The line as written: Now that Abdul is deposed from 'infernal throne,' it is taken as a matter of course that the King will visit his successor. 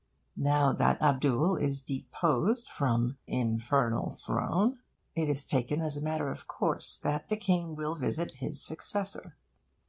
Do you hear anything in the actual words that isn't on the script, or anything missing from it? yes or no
no